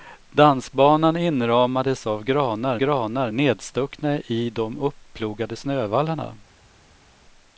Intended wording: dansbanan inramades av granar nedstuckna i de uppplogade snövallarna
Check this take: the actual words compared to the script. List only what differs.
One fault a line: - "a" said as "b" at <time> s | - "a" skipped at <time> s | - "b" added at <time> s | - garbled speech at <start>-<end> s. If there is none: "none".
- "granar" added at 2.8 s